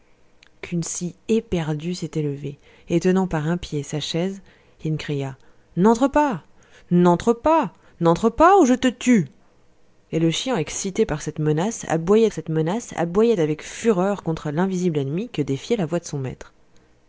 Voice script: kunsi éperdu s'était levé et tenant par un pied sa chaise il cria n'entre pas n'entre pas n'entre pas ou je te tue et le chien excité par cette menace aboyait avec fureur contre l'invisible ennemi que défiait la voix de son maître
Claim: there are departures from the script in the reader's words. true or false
true